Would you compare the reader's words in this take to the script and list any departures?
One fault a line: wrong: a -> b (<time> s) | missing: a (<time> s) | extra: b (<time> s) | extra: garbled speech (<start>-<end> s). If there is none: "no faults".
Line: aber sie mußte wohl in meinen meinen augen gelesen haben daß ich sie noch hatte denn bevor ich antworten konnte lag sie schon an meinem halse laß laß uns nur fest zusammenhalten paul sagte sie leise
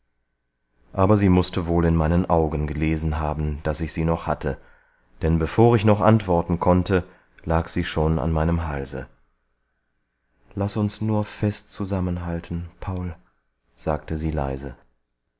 missing: meinen (2.3 s)
extra: noch (5.8 s)
missing: laß (10.8 s)